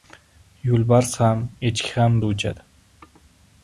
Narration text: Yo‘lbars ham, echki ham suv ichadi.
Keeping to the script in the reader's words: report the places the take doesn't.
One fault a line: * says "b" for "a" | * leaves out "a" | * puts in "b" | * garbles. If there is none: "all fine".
all fine